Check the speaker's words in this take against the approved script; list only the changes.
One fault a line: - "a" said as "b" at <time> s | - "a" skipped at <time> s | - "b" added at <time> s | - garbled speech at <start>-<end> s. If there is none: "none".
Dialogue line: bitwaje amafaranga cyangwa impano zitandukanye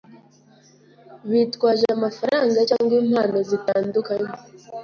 none